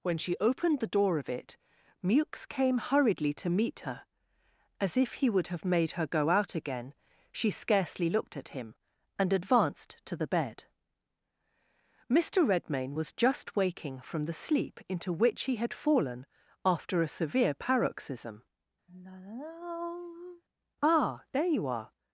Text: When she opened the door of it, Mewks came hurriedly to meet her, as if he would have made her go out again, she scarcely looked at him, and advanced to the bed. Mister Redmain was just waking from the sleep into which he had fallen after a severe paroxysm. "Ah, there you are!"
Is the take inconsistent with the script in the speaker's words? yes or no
no